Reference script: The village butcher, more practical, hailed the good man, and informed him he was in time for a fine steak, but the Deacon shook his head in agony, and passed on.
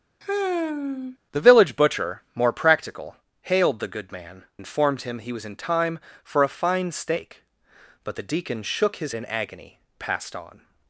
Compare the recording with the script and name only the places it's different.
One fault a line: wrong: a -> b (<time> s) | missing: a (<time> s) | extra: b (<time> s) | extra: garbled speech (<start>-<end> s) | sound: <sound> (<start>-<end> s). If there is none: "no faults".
sound: sigh (0.2-1.2 s)
missing: and (4.5 s)
missing: head (9.1 s)
missing: and (9.8 s)